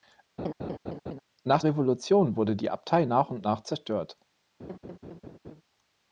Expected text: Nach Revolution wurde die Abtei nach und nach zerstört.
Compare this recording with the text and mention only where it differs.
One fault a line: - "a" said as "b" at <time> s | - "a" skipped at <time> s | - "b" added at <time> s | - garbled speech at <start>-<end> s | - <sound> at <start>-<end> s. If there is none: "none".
- laugh at 0.4-1.2 s
- laugh at 4.6-5.6 s